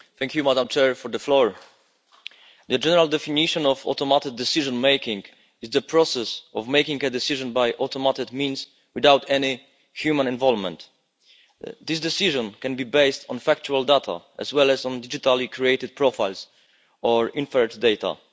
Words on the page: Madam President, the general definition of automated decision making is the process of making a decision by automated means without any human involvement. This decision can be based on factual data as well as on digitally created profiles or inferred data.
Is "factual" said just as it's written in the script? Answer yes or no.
yes